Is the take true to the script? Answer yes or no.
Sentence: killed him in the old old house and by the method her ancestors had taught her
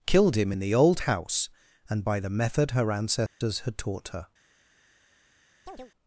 no